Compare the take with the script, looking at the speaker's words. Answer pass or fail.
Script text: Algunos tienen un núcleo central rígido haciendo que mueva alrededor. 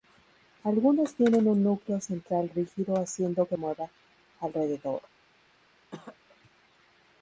pass